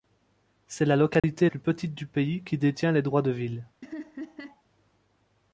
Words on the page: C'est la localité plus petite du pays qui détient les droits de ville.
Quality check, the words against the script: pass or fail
pass